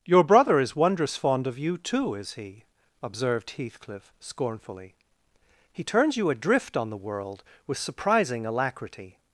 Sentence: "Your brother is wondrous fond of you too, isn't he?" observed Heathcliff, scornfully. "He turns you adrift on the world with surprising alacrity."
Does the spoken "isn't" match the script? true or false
false